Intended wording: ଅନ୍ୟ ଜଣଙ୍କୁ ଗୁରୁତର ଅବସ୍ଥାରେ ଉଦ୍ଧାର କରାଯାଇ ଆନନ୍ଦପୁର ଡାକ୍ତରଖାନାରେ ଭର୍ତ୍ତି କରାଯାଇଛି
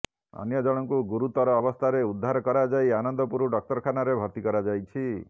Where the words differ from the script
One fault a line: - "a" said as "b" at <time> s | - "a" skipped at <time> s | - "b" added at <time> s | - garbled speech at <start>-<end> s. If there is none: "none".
none